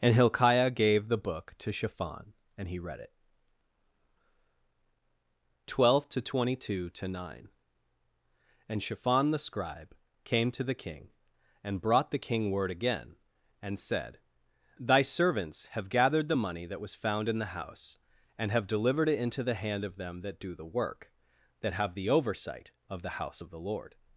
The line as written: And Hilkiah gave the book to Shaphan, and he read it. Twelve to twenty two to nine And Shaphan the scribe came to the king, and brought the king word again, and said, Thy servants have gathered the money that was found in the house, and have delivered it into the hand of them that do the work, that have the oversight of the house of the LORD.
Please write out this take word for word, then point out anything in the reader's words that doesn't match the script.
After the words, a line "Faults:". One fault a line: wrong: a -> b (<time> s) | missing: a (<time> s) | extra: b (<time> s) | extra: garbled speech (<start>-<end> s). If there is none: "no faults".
And Hilkiah gave the book to Shaphan, and he read it. Twelve to twenty two to nine And Shaphan the scribe came to the king, and brought the king word again, and said, Thy servants have gathered the money that was found in the house, and have delivered it into the hand of them that do the work, that have the oversight of the house of the LORD.
Faults:
no faults